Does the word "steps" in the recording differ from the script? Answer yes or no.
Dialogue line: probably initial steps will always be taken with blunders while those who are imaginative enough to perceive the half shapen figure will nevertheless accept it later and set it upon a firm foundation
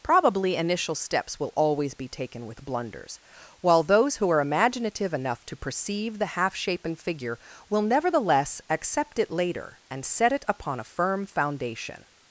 no